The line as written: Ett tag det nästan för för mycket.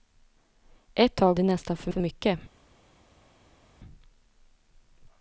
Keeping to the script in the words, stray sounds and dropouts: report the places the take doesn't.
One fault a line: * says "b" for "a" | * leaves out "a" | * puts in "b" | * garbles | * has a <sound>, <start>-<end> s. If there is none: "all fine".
all fine